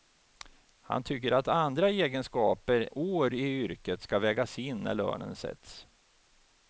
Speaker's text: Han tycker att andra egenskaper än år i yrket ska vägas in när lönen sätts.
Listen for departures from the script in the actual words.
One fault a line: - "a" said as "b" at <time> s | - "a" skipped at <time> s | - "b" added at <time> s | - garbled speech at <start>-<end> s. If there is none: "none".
- "än" skipped at 2.9 s